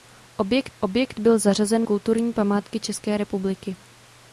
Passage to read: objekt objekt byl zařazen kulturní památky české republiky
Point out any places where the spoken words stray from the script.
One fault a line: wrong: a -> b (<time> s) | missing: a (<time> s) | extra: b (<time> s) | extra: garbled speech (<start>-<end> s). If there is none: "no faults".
no faults